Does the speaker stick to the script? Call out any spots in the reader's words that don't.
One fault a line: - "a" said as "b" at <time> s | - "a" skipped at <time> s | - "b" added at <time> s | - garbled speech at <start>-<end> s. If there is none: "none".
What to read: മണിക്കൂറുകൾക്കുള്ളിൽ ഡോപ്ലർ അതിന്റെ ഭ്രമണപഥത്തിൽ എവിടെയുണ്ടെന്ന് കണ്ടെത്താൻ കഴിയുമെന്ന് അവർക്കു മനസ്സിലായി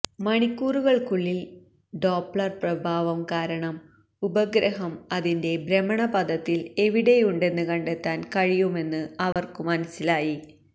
- "പ്രഭാവം കാരണം ഉപഗ്രഹം" added at 2.6 s